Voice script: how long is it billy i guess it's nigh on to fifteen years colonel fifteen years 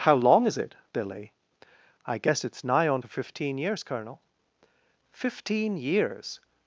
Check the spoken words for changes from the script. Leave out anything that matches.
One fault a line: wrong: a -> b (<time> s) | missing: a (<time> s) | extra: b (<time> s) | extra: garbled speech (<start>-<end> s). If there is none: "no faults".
no faults